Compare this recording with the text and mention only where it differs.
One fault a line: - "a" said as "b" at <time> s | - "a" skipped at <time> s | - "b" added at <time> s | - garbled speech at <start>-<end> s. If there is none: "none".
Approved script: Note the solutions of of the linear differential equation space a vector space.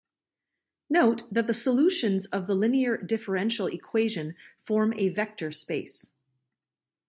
- "that" added at 1.3 s
- "of" skipped at 2.5 s
- "space" said as "form" at 4.6 s